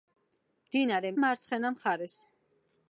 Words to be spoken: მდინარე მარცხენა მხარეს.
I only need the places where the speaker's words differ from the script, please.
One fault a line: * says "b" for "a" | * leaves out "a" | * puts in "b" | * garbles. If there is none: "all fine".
all fine